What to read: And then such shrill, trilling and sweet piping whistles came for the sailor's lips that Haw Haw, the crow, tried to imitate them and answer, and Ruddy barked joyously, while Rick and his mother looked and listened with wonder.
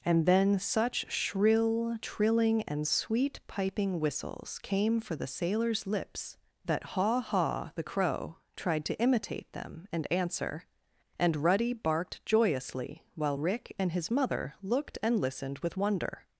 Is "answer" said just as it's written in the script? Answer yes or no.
yes